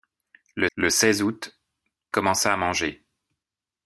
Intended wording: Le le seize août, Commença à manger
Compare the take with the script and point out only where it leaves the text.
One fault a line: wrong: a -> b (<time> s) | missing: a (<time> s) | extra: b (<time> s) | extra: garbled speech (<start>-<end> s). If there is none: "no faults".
no faults